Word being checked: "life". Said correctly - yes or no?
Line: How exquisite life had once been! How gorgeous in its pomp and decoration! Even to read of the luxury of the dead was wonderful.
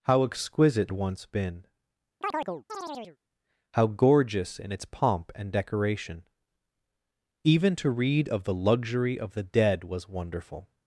no